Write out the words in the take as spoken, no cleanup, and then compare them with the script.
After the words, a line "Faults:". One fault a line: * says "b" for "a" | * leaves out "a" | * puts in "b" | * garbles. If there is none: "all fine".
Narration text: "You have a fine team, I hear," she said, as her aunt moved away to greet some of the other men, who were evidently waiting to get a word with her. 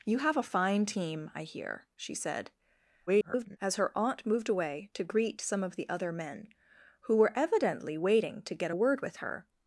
"You have a fine team, I hear," she said, [garbled] as her aunt moved away to greet some of the other men, who were evidently waiting to get a word with her.
Faults:
* garbles